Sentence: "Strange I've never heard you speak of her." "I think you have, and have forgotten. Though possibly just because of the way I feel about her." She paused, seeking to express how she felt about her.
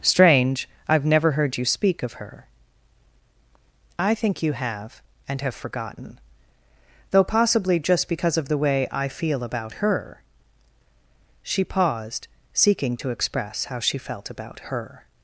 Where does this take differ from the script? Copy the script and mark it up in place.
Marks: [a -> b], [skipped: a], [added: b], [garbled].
"Strange I've never heard you speak of her." "I think you have, and have forgotten. Though possibly just because of the way I feel about her." She paused, seeking to express how she felt about her.